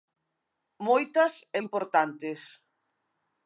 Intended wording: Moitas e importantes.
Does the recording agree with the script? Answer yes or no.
yes